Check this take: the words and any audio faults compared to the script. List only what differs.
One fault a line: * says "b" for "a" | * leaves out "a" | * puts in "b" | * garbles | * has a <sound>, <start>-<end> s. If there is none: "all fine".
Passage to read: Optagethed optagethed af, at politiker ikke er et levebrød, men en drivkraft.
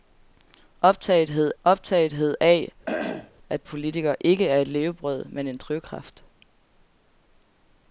* has a throat clearing, 2.9-3.3 s